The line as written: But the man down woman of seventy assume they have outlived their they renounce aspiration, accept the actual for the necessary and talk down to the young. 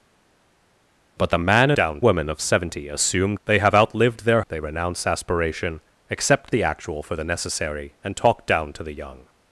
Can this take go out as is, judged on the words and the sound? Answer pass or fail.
pass